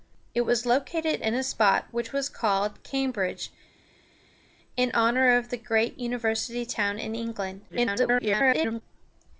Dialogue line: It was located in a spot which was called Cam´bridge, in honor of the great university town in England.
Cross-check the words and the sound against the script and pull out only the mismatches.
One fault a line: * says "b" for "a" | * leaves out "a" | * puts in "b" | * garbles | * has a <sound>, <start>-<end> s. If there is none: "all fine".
* garbles